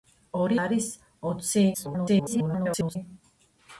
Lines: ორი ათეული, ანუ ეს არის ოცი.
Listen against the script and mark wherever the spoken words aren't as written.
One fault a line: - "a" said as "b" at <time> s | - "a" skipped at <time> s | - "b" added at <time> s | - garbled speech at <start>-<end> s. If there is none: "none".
- "ათეული ანუ ეს" skipped at 0.6 s
- garbled speech at 1.7-3.0 s